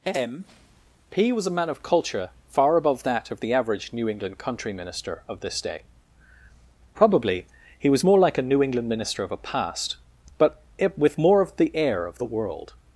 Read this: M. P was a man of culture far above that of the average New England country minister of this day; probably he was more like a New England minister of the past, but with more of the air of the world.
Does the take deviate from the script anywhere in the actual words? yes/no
yes